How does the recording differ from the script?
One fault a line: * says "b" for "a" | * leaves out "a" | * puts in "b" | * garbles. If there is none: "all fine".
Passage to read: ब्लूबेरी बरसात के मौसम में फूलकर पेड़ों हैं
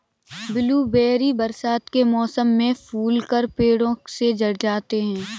* puts in "से झड़ जाते"